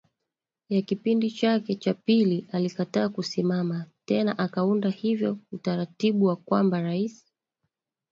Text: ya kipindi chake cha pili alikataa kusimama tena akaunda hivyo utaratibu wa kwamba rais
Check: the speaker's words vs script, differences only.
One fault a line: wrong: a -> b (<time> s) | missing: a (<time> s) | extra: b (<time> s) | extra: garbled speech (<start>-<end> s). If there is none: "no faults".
no faults